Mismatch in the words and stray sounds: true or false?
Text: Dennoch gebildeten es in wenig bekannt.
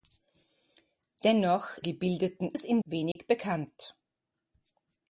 true